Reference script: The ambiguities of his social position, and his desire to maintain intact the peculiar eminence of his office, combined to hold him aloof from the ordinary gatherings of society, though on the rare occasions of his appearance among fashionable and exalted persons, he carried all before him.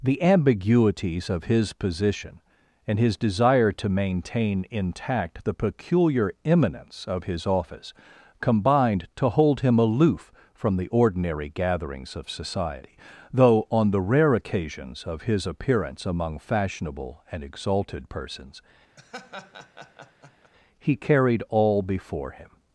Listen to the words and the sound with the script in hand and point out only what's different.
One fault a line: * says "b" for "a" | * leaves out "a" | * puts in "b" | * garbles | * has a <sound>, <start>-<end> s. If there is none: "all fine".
* leaves out "social"
* has a laugh, 19.0-20.5 s